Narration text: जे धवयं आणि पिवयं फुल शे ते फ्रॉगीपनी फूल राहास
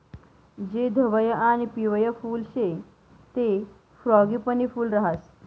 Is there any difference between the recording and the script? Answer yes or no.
no